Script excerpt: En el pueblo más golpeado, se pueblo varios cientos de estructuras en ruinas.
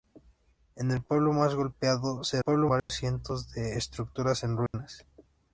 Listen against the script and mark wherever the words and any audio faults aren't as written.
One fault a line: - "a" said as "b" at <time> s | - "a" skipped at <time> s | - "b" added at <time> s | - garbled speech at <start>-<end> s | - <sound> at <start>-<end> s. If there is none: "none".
- dropout at 2.8-2.9 s
- dropout at 4.7-4.7 s